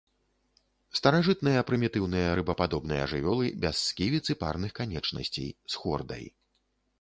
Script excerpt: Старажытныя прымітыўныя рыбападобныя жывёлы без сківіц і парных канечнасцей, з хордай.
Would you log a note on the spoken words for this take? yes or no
no